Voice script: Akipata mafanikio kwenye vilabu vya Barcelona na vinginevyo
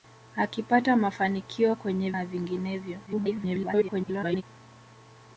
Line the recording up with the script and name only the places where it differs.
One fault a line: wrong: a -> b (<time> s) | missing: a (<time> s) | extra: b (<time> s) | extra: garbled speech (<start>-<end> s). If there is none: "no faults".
missing: vilabu vya Barcelona (2.1 s)
extra: garbled speech (3.1-4.4 s)